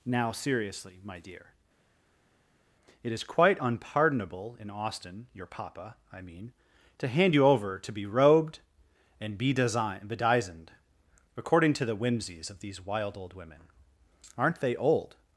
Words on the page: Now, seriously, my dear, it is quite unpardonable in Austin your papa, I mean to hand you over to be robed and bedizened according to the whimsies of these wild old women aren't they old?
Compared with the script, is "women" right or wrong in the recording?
right